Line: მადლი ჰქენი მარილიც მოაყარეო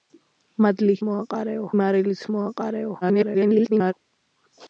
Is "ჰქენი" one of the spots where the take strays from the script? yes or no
yes